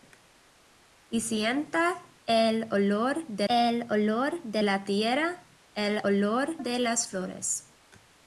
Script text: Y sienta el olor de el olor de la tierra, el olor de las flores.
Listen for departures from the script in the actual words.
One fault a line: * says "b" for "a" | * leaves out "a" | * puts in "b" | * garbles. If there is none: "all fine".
all fine